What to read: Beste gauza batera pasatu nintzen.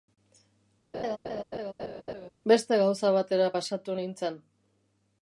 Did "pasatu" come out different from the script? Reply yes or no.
no